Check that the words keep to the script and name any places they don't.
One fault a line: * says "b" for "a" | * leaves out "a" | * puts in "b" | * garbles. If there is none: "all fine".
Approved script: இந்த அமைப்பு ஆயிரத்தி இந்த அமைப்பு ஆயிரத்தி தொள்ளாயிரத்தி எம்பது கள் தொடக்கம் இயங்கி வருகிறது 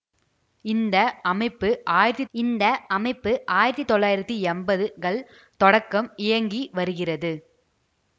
all fine